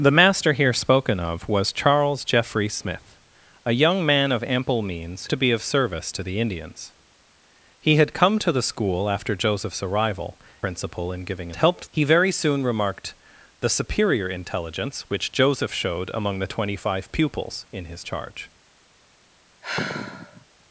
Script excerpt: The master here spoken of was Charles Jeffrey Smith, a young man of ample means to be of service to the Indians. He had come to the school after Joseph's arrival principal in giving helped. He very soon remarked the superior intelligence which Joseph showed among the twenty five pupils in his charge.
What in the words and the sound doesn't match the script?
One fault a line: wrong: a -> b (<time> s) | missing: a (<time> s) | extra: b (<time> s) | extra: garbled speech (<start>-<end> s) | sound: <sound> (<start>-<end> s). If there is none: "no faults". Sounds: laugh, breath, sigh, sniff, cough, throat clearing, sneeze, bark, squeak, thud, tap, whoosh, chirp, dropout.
sound: sigh (19.6-20.5 s)